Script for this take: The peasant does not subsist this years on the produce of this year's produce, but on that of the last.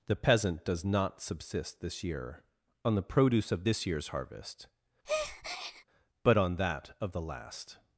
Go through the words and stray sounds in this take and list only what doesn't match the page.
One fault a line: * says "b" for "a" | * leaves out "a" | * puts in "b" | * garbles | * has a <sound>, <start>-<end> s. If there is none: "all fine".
* says "year" for "years"
* says "harvest" for "produce"
* has a breath, 5.0-5.8 s